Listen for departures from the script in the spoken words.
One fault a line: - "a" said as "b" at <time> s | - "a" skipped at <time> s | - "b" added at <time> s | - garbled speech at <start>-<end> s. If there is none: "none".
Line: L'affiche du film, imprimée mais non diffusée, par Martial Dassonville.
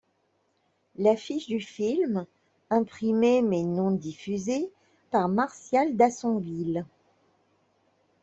none